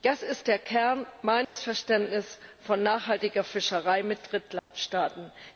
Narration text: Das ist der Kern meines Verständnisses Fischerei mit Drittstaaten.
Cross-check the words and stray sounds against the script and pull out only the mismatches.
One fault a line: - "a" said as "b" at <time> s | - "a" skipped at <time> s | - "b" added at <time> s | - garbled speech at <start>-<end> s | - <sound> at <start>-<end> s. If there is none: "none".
- dropout at 1.4-1.6 s
- "von nachhaltiger" added at 2.6 s
- dropout at 4.6-4.7 s